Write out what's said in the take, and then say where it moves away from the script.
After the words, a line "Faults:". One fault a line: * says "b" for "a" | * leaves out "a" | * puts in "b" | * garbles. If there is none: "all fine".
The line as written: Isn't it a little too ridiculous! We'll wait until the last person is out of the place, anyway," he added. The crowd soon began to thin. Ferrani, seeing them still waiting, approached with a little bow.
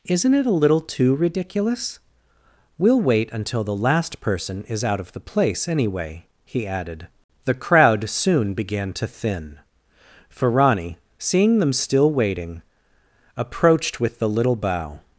Isn't it a little too ridiculous! We'll wait until the last person is out of the place, anyway," he added. The crowd soon began to thin. Ferrani, seeing them still waiting, approached with the little bow.
Faults:
* says "the" for "a"